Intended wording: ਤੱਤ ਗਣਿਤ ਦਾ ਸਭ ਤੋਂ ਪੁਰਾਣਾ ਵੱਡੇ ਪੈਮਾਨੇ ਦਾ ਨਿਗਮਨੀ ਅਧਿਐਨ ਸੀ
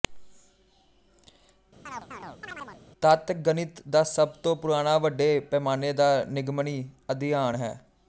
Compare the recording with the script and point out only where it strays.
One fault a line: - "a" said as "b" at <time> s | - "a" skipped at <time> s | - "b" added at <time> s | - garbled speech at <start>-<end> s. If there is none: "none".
- "ਸੀ" said as "ਹੈ" at 7.6 s